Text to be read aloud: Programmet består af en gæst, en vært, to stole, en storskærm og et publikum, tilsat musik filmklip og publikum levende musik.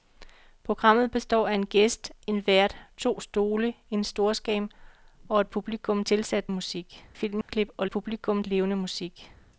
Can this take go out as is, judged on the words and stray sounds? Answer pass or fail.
fail